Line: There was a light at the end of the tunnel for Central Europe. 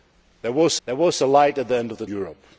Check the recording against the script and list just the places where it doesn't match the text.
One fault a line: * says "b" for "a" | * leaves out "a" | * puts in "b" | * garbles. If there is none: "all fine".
* puts in "there was"
* leaves out "tunnel for Central"